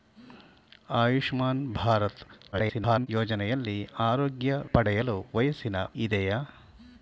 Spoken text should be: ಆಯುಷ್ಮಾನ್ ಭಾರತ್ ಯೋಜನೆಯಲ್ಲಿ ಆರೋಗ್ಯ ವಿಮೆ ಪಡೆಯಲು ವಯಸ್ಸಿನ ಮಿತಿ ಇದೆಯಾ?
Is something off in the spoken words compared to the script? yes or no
yes